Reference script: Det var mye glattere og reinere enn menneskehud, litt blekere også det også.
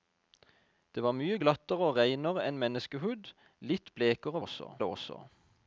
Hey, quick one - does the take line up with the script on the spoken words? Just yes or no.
yes